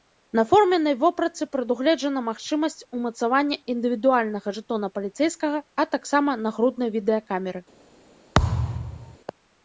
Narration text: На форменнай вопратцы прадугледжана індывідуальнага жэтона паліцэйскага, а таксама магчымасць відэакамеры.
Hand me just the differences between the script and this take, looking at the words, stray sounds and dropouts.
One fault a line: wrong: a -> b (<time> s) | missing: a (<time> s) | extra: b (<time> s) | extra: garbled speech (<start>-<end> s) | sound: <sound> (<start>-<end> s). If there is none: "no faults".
extra: магчымасць умацавання (2.3 s)
wrong: магчымасць -> нагруднай (6.4 s)
sound: thud (8.3-9.2 s)